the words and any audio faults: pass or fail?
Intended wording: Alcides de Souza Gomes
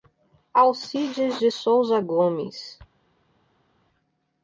pass